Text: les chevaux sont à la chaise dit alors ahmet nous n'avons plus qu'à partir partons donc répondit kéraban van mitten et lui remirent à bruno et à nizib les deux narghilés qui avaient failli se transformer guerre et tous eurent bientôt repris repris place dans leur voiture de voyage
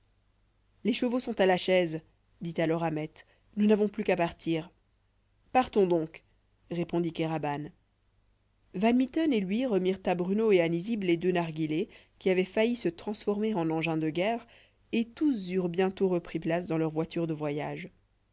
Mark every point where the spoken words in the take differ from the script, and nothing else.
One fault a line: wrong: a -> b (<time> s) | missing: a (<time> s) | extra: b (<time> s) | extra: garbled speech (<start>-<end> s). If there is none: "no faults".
extra: en engins de (13.5 s)
missing: repris (16.4 s)